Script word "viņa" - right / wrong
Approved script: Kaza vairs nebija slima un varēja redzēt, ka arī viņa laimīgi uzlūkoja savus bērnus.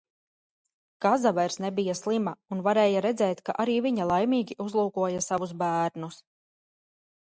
right